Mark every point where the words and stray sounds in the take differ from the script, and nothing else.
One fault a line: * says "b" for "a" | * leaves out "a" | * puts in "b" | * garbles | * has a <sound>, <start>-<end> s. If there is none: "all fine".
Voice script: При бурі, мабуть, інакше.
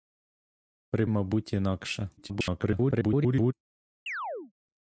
* leaves out "бурі"
* garbles
* has a chirp, 4.1-4.5 s